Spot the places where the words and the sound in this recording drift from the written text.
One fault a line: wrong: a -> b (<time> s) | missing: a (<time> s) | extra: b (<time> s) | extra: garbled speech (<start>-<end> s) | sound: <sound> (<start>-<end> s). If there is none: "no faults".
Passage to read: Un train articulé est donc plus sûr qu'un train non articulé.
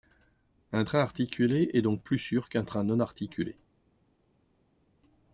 no faults